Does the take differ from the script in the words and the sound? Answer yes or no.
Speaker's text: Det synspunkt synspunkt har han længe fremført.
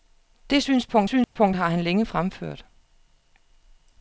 yes